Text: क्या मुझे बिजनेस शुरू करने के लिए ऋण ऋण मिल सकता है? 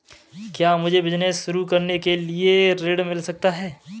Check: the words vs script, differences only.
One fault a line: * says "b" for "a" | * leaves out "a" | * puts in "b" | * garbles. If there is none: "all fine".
* leaves out "ऋण"